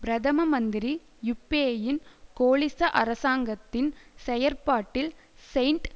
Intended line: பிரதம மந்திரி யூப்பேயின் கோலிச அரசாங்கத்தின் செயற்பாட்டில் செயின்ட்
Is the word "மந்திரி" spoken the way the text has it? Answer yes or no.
yes